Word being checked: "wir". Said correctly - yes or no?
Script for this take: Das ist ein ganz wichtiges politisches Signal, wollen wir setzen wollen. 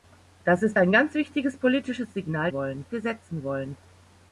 yes